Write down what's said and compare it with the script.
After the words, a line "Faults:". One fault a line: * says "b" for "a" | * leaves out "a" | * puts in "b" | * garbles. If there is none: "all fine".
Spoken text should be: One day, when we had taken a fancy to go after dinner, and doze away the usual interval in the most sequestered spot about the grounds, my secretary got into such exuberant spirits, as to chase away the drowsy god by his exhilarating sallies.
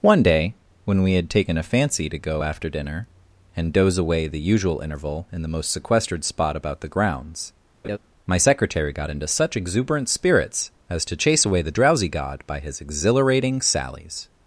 One day, when we had taken a fancy to go after dinner, and doze away the usual interval in the most sequestered spot about the grounds, my secretary got into such exuberant spirits, as to chase away the drowsy god by his exhilarating sallies.
Faults:
all fine